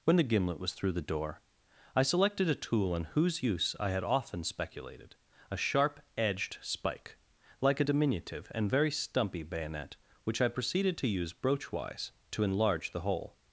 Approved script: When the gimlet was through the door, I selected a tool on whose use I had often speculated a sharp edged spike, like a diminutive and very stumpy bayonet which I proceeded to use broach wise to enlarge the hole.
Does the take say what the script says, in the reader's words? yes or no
yes